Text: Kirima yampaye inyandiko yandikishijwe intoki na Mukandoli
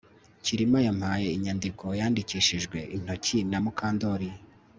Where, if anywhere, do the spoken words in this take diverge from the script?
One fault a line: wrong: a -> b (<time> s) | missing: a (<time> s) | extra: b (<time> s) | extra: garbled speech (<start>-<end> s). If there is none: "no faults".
no faults